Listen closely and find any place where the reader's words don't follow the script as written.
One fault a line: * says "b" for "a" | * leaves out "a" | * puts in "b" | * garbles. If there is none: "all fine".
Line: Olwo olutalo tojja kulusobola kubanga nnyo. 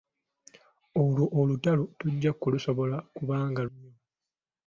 all fine